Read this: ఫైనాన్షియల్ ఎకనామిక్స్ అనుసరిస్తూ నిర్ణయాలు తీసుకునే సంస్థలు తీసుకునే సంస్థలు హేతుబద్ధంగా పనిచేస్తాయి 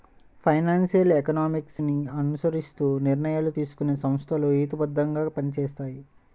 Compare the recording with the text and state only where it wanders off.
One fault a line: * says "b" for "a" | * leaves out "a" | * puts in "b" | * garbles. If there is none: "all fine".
* puts in "ని"
* leaves out "తీసుకునే సంస్థలు"